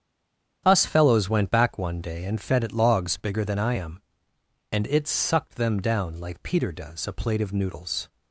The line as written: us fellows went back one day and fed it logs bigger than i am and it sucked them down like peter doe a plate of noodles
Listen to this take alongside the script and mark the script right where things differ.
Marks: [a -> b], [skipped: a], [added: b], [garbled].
us fellows went back one day and fed it logs bigger than i am and it sucked them down like peter [doe -> does] a plate of noodles